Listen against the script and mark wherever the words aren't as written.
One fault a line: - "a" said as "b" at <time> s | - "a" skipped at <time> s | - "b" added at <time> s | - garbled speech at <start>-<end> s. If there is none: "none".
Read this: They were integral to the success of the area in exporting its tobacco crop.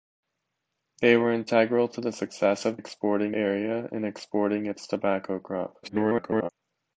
- "the" said as "exporting" at 2.7 s
- garbled speech at 5.8-6.5 s